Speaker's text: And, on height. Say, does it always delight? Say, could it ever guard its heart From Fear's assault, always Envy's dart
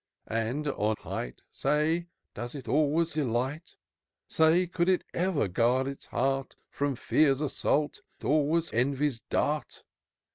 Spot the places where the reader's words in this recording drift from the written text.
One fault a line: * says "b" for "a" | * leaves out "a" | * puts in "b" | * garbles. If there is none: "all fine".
all fine